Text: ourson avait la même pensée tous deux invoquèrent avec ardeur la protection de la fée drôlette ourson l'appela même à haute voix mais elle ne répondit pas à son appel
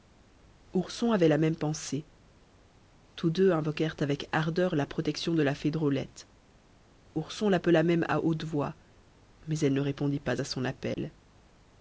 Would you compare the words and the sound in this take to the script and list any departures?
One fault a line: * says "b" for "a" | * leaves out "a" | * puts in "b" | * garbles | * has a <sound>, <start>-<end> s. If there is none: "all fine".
* has a dropout, 10.9-11.0 s